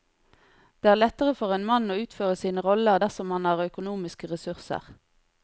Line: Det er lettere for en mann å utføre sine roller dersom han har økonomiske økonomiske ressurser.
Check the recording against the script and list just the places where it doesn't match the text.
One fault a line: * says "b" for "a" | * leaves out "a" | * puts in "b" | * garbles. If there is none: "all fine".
* leaves out "økonomiske"